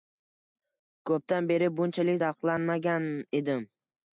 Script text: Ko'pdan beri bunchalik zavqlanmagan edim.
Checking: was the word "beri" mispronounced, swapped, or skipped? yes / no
no